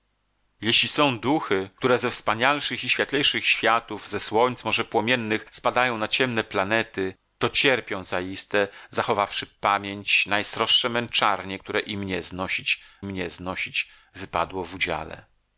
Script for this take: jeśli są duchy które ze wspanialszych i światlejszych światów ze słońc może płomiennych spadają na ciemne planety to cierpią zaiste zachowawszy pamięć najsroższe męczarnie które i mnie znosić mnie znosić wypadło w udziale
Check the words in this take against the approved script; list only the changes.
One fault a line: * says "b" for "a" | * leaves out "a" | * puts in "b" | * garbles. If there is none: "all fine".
all fine